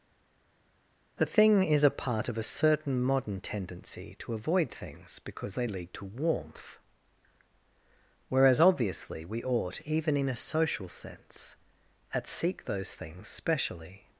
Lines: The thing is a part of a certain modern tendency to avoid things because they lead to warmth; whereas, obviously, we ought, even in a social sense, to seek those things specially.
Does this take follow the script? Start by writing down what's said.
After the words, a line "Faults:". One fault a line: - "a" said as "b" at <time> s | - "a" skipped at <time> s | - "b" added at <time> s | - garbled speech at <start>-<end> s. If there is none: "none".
The thing is a part of a certain modern tendency to avoid things because they lead to warmth; whereas, obviously, we ought, even in a social sense, at seek those things specially.
Faults:
- "to" said as "at" at 12.1 s